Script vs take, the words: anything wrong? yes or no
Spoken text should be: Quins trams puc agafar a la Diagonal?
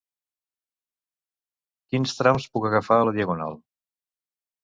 no